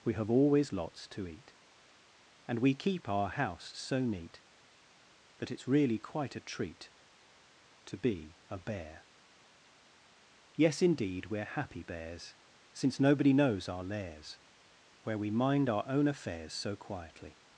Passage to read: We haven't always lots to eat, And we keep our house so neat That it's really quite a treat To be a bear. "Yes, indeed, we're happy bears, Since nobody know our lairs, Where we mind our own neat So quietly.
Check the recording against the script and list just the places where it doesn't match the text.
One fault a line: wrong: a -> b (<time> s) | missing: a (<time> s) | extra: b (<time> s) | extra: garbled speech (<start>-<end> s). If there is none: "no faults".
wrong: haven't -> have (0.1 s)
wrong: know -> knows (13.3 s)
wrong: neat -> affairs (16.1 s)